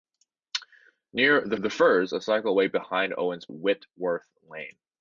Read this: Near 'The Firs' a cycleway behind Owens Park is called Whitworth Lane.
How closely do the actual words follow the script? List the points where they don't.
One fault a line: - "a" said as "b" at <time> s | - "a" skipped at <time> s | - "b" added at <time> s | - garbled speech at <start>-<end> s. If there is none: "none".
- "the" added at 1.6 s
- "Park is called" skipped at 3.5 s